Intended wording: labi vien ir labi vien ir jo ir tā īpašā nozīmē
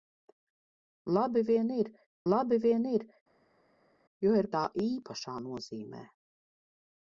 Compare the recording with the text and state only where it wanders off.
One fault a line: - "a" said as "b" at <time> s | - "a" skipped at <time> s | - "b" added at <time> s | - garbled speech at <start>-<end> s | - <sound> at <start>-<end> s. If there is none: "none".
none